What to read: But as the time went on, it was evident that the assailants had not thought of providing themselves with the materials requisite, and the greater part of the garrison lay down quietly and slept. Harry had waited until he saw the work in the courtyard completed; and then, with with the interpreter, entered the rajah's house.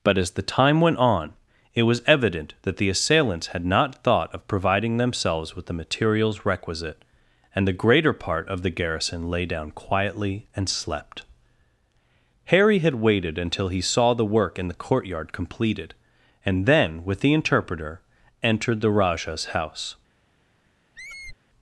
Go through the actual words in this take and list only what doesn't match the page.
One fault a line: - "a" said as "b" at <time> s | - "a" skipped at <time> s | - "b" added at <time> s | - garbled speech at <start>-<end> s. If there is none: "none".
- "with" skipped at 17.2 s